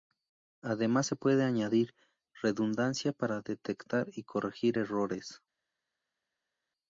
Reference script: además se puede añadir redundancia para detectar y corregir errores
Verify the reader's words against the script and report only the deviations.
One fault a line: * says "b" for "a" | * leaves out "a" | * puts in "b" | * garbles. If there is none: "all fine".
all fine